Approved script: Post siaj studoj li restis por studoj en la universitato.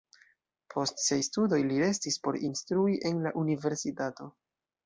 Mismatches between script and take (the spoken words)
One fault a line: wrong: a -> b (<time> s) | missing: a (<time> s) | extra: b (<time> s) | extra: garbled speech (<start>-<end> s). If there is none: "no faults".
wrong: studoj -> instrui (2.5 s)